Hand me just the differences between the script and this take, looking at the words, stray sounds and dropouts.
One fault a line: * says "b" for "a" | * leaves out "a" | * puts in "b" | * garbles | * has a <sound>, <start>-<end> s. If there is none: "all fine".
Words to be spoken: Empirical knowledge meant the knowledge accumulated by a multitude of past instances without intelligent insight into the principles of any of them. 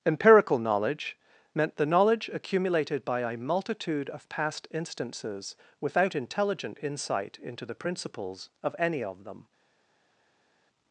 all fine